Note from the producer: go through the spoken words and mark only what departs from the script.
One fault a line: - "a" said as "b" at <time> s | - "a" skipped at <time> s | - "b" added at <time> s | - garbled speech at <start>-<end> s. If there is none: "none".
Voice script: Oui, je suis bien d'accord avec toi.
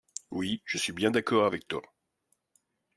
none